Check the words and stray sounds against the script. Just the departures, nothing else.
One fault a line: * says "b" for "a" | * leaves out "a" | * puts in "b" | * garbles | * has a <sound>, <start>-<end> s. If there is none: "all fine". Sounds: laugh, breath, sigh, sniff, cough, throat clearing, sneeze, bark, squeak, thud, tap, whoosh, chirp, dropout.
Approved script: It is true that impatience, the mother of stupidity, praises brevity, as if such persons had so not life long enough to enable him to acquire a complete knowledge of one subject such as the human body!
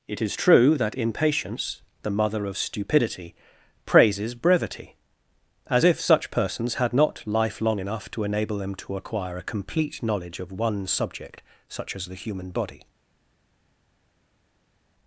* leaves out "so"
* says "them" for "him"